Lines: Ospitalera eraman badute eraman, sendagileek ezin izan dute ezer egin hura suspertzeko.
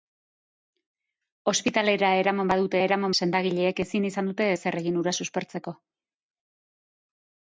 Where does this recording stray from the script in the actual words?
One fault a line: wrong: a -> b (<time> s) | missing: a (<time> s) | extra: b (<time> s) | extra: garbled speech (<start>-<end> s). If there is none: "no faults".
no faults